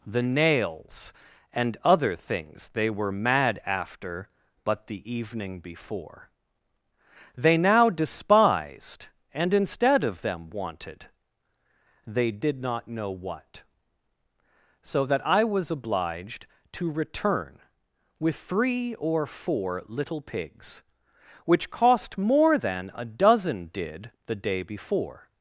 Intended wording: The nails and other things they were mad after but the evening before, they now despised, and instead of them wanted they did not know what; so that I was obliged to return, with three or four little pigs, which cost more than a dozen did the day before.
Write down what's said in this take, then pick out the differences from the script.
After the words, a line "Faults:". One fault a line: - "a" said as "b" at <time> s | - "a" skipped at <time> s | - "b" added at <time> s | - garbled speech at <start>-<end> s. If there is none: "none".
The nails and other things they were mad after but the evening before, they now despised, and instead of them wanted they did not know what; so that I was obliged to return, with three or four little pigs, which cost more than a dozen did the day before.
Faults:
none